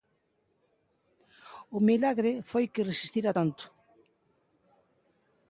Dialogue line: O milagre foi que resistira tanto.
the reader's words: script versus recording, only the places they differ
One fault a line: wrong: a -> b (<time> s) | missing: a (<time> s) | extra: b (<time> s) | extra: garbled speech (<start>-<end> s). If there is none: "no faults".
no faults